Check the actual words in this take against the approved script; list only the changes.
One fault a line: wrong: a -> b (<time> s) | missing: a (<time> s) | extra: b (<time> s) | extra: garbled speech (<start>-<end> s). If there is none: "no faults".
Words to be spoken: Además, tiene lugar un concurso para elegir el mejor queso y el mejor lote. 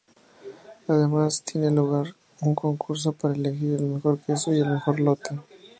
no faults